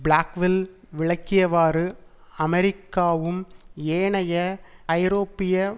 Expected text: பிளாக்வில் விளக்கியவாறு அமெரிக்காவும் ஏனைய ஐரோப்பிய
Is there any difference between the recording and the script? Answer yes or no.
no